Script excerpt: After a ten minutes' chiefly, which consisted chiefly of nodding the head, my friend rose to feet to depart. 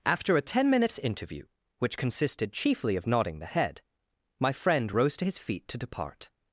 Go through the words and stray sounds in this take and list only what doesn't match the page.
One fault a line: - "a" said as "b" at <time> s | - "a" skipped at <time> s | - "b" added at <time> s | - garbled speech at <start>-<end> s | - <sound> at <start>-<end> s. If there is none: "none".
- "chiefly" said as "interview" at 1.0 s
- "his" added at 5.2 s